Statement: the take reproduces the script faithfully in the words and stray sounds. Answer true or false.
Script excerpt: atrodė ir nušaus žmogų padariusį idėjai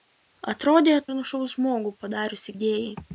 true